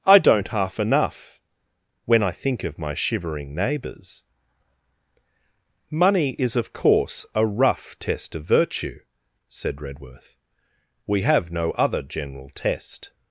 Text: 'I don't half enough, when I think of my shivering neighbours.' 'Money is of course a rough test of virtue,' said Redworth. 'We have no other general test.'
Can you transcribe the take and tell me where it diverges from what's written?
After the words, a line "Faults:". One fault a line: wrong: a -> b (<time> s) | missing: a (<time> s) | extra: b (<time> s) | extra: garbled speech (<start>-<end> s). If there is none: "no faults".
'I don't half enough, when I think of my shivering neighbours.' 'Money is of course a rough test of virtue,' said Redworth. 'We have no other general test.'
Faults:
no faults